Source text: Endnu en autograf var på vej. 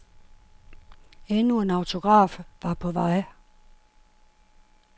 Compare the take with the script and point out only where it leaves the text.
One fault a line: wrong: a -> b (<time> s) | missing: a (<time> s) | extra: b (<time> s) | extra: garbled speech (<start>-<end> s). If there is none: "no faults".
no faults